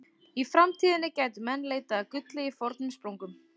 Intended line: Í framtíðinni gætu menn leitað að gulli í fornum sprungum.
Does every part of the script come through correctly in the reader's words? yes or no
yes